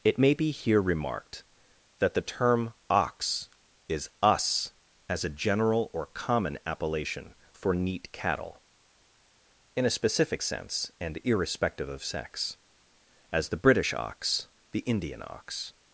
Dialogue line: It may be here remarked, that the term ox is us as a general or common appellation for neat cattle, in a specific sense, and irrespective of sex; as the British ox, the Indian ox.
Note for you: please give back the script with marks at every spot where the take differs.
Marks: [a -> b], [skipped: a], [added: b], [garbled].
It may be here remarked, that the term ox is us as a general or common appellation for neat cattle, in a specific sense, and irrespective of sex; as the British ox, the Indian ox.